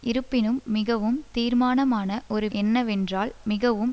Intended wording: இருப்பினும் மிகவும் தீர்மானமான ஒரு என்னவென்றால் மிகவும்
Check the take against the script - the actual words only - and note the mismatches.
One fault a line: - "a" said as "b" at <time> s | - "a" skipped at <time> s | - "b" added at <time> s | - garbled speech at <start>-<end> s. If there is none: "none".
none